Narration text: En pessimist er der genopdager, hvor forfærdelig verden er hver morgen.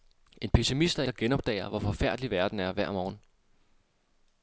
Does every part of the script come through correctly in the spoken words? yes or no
yes